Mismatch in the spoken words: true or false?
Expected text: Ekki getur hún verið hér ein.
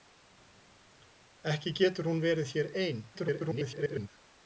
true